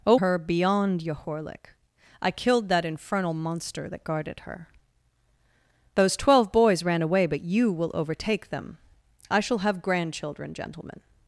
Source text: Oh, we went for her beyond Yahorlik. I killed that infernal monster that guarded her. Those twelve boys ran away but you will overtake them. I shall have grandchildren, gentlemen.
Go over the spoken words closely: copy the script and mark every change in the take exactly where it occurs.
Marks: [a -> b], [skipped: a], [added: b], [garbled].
Oh, [skipped: we went for] her beyond Yahorlik. I killed that infernal monster that guarded her. Those twelve boys ran away but you will overtake them. I shall have grandchildren, gentlemen.